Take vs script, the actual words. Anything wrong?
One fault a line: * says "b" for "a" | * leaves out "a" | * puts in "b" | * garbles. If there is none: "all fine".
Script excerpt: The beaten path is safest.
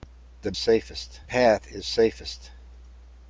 * says "safest" for "beaten"